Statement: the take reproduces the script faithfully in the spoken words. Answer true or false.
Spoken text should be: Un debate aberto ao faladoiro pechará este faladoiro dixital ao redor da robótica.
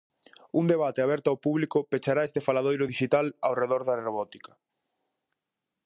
false